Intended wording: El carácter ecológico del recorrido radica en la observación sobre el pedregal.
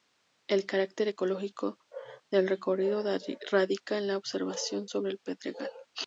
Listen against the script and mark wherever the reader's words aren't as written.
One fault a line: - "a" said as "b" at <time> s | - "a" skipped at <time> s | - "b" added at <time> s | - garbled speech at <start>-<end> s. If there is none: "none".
none